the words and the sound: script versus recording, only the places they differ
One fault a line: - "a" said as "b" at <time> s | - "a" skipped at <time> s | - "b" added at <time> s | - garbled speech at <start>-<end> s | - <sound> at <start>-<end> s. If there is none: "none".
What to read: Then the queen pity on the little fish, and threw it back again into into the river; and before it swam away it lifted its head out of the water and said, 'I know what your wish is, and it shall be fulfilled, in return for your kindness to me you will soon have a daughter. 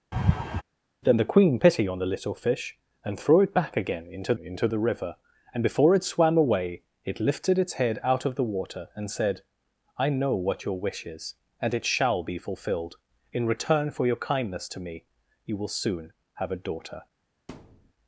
- laugh at 0.1-0.6 s
- thud at 17.5-17.9 s